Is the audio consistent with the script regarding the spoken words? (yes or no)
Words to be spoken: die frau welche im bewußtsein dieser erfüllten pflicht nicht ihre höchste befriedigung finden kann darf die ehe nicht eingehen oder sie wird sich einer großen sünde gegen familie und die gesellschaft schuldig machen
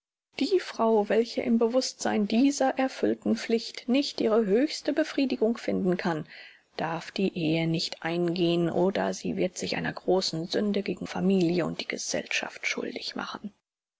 yes